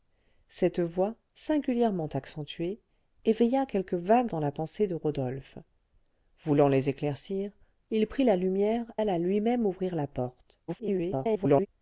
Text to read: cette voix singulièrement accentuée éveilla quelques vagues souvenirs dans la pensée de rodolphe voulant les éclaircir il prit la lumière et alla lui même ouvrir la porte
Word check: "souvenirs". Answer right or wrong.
wrong